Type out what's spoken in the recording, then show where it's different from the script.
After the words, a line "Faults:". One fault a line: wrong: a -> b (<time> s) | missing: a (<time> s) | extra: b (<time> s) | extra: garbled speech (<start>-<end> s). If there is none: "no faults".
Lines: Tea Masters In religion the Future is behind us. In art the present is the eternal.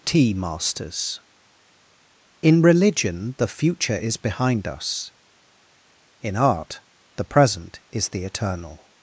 Tea Masters In religion the Future is behind us. In art the present is the eternal.
Faults:
no faults